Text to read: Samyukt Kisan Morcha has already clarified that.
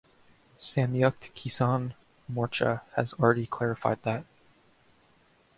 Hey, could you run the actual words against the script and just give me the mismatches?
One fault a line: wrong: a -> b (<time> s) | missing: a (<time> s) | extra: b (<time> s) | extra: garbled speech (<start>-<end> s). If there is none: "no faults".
no faults